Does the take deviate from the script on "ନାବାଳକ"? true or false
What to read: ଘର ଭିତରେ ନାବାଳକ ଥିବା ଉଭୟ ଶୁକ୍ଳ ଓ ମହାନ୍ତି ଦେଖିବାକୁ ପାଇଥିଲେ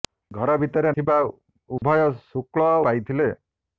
true